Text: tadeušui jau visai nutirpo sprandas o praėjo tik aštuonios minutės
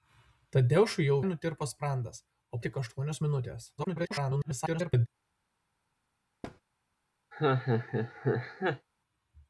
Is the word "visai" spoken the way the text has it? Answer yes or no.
no